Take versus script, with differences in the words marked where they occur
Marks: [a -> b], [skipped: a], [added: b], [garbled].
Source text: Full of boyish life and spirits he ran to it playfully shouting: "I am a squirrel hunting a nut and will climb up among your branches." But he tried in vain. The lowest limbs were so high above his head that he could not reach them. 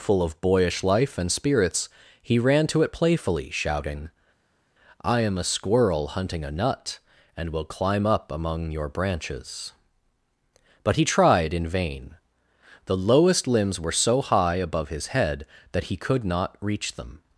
Full of boyish life and spirits he ran to it playfully shouting: "I am a squirrel hunting a nut and will climb up among your branches." But he tried in vain. The lowest limbs were so high above his head that he could not reach them.